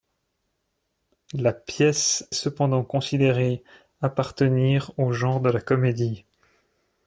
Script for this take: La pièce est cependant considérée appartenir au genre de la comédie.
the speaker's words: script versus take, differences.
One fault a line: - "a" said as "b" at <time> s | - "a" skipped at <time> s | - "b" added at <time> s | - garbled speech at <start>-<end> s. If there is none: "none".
- "est" skipped at 2.3 s